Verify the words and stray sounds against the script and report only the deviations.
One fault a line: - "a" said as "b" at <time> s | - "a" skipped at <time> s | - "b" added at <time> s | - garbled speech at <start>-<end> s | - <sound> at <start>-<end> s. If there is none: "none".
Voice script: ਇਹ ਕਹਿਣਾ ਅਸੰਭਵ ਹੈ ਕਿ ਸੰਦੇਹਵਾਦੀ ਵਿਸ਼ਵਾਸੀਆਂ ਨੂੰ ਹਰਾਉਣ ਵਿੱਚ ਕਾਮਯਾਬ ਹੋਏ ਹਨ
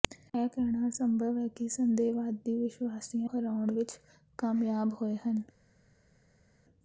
- "ਨੂੰ" skipped at 3.3 s